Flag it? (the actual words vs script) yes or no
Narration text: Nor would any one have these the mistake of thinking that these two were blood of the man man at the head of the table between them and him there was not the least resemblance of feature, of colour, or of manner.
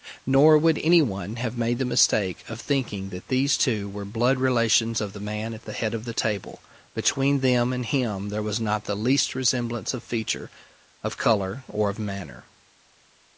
yes